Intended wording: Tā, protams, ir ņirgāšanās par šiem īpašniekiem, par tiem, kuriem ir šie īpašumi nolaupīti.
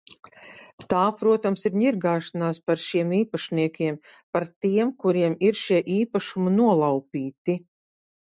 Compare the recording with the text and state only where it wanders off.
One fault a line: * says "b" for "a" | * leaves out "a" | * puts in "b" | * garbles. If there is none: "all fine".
all fine